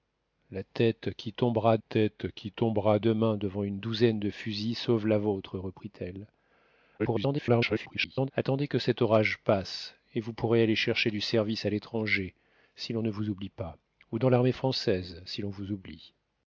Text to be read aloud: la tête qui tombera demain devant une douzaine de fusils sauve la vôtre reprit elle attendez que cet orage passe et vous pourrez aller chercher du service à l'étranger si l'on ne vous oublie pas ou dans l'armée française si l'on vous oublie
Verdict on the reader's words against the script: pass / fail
fail